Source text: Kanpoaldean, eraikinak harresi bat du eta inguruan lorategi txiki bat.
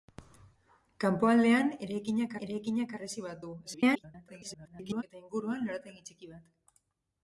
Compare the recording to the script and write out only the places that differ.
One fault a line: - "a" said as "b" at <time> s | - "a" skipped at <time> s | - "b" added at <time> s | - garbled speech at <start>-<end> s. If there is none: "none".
- "eraikinak" added at 2.5 s
- garbled speech at 3.6-5.0 s